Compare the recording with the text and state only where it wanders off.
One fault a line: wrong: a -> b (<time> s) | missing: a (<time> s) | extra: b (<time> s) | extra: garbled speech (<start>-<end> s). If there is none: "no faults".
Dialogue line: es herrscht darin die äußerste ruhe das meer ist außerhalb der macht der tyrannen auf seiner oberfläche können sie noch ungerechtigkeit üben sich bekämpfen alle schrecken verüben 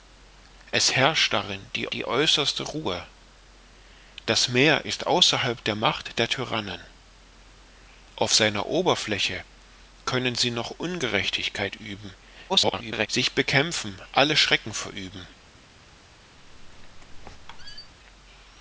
extra: die (1.9 s)
extra: garbled speech (12.5-13.1 s)